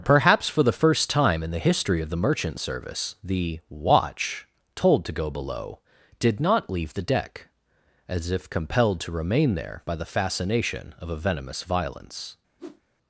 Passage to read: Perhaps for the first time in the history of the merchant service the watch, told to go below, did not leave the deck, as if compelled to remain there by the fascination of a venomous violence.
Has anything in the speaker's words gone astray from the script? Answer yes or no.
no